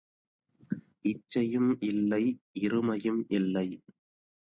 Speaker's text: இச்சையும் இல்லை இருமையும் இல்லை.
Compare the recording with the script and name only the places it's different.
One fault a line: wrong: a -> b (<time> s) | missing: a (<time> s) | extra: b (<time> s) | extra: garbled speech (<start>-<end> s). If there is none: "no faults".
no faults